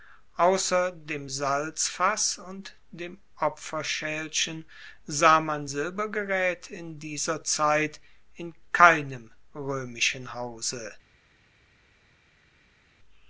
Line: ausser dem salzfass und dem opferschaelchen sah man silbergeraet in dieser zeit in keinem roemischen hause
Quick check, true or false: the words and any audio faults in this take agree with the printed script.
true